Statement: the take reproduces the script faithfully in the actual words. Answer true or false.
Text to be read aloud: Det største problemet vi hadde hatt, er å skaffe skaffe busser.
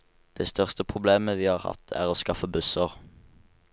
false